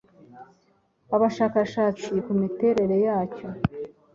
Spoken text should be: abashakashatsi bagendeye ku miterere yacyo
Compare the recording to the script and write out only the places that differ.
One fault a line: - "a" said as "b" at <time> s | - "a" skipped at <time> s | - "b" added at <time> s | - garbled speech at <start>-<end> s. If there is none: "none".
- "bagendeye" skipped at 2.1 s